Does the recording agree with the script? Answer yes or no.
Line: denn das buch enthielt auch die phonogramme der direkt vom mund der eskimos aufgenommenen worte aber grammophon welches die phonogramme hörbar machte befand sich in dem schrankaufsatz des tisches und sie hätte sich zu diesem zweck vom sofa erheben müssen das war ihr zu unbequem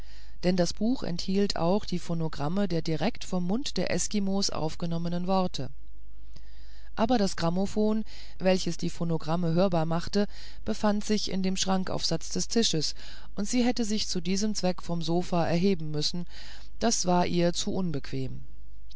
no